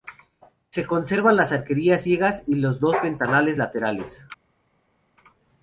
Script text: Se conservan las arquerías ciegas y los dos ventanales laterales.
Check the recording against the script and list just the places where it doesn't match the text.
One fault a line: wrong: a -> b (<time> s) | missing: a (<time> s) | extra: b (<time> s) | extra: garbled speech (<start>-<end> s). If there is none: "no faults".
no faults